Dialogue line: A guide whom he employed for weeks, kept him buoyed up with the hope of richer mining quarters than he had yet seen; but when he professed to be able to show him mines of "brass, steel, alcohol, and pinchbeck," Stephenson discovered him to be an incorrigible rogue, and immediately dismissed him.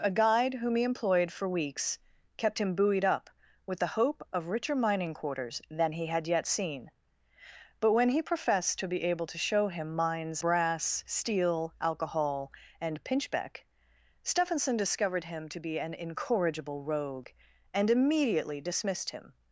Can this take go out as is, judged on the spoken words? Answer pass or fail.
fail